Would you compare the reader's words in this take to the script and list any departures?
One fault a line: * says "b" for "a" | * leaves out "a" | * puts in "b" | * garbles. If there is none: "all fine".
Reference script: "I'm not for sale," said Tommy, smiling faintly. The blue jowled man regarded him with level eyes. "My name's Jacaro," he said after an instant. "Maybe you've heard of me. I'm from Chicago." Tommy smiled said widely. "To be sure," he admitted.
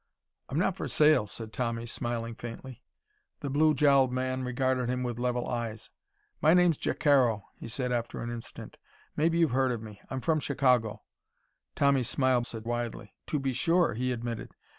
all fine